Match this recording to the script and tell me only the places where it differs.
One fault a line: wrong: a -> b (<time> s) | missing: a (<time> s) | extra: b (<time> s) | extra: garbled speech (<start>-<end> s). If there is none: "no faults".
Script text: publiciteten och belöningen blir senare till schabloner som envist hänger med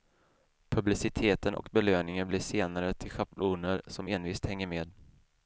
no faults